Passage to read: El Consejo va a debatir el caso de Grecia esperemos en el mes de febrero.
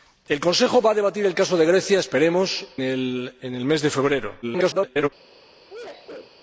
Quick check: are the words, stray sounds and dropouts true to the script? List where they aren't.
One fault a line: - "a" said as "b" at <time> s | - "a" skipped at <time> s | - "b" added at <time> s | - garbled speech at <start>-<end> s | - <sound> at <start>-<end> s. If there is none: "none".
- "en" skipped at 2.6 s
- garbled speech at 4.4-5.1 s
- sneeze at 5.7-6.4 s